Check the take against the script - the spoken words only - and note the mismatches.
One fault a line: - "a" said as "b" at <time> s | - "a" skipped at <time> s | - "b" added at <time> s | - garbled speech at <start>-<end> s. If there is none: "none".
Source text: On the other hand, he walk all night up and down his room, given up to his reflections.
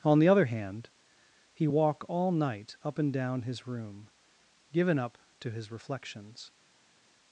none